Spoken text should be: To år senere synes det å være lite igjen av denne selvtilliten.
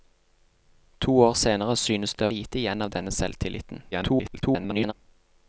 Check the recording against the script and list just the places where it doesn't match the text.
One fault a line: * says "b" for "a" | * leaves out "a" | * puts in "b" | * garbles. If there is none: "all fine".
* leaves out "være"
* garbles